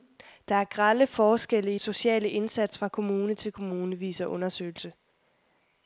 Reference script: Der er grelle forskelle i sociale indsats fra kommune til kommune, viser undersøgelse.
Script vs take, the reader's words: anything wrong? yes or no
no